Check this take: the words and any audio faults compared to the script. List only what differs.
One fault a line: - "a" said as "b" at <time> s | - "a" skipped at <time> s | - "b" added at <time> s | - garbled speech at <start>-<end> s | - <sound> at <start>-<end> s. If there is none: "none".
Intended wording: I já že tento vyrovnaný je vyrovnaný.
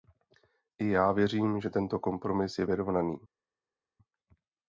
- "věřím" added at 1.1 s
- "vyrovnaný" said as "kompromis" at 2.0 s